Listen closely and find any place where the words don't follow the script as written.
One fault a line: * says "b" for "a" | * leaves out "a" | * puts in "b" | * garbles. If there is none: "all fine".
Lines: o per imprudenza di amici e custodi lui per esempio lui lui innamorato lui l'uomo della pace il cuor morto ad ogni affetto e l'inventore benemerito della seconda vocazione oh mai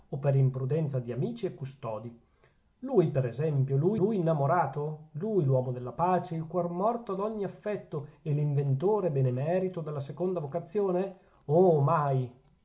all fine